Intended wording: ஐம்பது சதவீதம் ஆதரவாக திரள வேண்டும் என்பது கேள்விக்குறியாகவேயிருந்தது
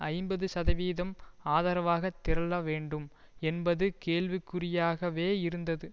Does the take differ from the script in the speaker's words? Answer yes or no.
no